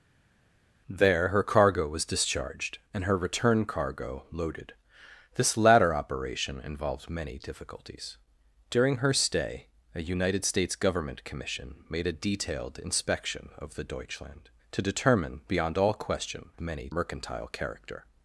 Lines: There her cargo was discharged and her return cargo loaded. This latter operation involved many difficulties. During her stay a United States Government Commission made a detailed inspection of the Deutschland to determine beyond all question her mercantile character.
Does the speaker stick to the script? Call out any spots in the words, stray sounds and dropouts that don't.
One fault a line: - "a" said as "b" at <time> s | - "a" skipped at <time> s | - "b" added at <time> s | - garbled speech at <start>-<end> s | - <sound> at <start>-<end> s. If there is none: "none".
- "her" said as "many" at 16.6 s